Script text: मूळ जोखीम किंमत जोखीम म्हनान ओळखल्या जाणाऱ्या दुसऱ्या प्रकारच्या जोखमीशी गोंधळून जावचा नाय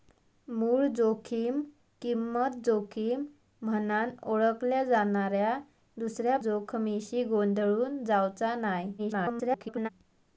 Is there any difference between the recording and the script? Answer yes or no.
yes